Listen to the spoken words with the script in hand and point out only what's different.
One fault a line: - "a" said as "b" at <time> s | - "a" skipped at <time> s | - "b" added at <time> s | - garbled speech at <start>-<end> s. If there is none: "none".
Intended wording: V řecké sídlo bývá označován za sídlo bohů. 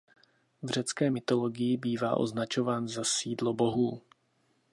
- "sídlo" said as "mytologii" at 1.1 s